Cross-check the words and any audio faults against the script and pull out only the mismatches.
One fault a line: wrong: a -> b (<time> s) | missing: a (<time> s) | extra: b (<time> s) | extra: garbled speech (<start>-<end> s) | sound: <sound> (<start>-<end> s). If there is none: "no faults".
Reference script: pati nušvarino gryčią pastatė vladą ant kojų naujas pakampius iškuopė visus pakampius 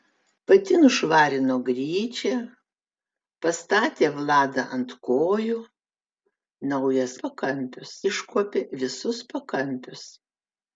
no faults